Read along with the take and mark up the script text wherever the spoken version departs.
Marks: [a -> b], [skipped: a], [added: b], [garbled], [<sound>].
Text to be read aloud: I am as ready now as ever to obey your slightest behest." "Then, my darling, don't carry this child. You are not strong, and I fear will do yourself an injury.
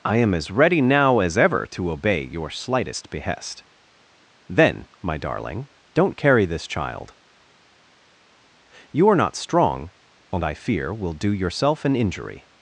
I am as ready now as ever to obey your slightest behest." "Then, my darling, don't carry this child. You are not strong, and I fear will do yourself an injury.